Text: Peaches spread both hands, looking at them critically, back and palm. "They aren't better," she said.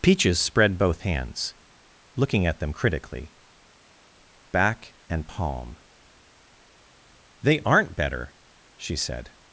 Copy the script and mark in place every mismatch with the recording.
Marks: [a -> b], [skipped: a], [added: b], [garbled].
Peaches spread both hands, looking at them critically, back and palm. "They aren't better," she said.